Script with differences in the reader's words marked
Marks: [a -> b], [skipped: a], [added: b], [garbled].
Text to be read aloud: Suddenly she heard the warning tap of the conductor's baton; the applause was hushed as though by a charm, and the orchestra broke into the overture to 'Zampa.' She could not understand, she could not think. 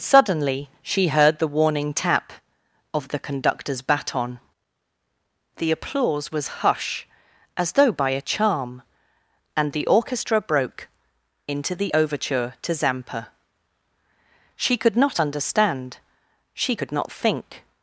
Suddenly she heard the warning tap of the conductor's baton; the applause was [hushed -> hush] as though by a charm, and the orchestra broke into the overture to 'Zampa.' She could not understand, she could not think.